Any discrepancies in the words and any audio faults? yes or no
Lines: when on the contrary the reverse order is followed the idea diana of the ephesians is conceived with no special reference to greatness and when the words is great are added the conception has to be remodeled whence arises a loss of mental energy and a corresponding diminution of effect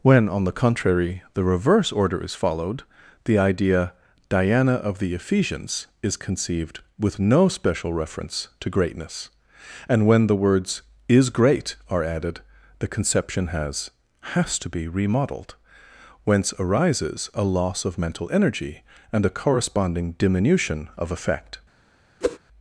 yes